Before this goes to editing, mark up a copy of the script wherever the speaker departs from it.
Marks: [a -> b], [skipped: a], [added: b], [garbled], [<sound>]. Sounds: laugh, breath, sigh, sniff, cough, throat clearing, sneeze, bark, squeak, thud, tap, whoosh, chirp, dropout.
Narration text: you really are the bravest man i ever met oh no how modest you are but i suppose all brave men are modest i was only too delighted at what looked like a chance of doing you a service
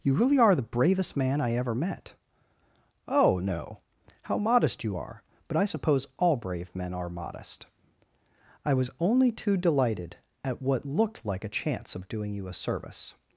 you really are the bravest man i ever met oh no how modest you are but i suppose all brave men are modest i was only too delighted at what looked like a chance of doing you a service